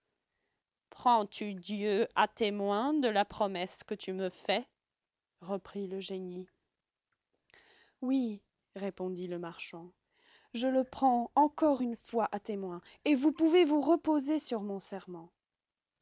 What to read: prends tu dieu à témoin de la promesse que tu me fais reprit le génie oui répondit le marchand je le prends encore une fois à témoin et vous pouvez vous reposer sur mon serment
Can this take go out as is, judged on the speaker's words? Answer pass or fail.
pass